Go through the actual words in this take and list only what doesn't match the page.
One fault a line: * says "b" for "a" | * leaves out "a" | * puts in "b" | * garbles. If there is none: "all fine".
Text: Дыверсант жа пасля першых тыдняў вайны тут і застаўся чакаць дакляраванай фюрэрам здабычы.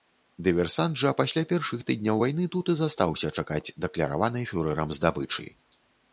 all fine